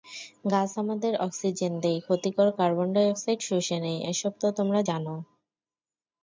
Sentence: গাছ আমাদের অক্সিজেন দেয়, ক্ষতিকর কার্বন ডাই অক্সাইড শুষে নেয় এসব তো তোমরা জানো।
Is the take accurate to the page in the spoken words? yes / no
yes